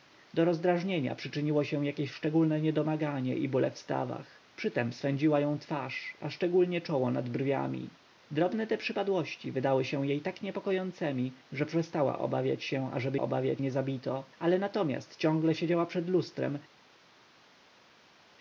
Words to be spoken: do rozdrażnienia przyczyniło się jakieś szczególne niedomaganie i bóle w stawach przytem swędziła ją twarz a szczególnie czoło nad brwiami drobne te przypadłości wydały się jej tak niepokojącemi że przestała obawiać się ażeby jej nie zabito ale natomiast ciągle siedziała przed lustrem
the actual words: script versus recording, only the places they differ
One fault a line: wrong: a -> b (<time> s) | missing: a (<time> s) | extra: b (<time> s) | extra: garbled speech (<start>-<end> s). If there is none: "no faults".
wrong: jej -> obawiać (13.2 s)